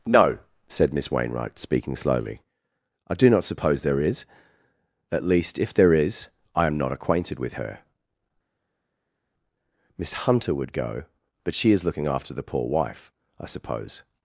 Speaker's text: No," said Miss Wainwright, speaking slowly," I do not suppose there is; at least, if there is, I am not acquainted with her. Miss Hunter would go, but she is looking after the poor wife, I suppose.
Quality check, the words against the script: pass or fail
pass